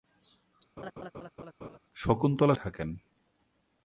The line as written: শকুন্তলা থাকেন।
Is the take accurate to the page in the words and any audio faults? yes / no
no